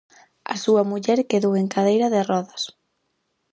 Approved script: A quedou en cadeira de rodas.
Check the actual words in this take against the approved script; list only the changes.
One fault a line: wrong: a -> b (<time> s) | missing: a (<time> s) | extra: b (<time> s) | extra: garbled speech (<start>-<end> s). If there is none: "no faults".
extra: súa muller (0.6 s)